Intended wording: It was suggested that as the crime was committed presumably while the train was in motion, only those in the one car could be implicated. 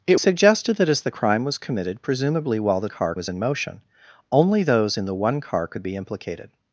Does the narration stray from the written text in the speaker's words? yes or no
yes